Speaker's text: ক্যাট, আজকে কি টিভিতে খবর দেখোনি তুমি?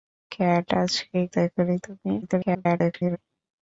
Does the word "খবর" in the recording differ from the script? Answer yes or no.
yes